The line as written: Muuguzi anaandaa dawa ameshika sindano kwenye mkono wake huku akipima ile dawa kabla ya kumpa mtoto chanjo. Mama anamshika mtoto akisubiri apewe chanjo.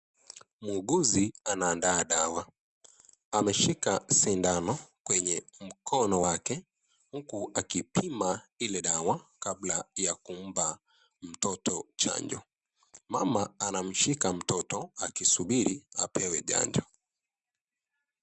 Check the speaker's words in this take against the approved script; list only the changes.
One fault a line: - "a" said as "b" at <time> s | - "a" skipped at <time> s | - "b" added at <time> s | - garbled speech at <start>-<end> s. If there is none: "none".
none